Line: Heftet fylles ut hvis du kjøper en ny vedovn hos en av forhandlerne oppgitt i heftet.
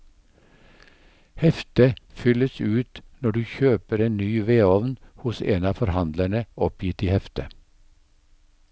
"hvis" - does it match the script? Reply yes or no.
no